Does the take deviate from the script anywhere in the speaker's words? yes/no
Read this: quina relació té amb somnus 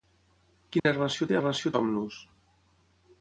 yes